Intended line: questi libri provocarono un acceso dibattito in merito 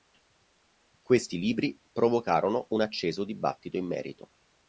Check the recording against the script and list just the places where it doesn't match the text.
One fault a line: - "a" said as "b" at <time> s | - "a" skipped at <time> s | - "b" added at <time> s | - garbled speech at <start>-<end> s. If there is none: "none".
none